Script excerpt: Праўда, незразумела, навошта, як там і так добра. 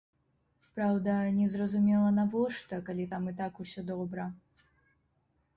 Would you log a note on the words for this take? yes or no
yes